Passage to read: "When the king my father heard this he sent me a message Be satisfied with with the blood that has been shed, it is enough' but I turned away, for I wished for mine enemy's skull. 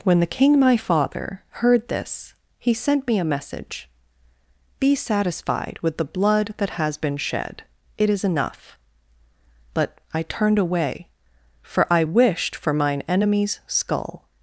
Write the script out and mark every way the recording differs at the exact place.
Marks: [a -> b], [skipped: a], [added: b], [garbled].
"When the king my father heard this he sent me a message Be satisfied with [skipped: with] the blood that has been shed, it is enough' but I turned away, for I wished for mine enemy's skull.